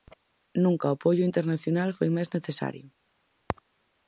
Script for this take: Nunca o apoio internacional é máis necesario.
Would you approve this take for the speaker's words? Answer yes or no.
no